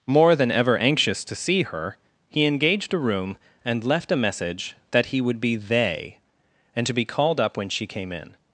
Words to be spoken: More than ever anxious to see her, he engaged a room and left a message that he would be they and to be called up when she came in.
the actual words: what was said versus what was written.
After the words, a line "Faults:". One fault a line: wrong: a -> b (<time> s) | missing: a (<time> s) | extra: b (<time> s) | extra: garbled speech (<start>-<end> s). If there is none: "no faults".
More than ever anxious to see her, he engaged a room and left a message that he would be they and to be called up when she came in.
Faults:
no faults